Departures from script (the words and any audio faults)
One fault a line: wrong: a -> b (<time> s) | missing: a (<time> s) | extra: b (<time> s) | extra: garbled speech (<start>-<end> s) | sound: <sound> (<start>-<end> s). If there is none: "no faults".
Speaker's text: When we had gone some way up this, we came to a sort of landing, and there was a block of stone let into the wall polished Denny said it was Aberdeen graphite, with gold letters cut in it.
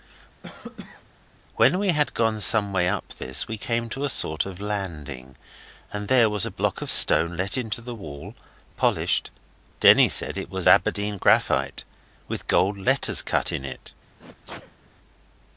sound: cough (0.4-1.0 s)
sound: sneeze (14.2-14.9 s)